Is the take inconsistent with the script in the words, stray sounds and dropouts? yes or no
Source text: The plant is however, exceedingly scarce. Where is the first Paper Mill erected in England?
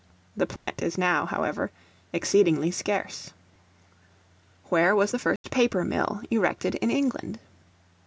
yes